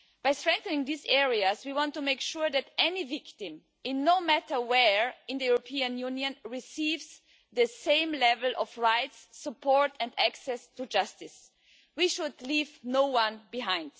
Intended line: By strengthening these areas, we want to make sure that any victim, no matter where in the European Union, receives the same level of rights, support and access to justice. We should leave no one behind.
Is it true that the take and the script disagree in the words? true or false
false